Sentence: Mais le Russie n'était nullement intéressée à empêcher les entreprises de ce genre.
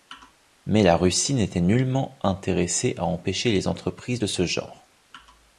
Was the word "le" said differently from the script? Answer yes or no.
yes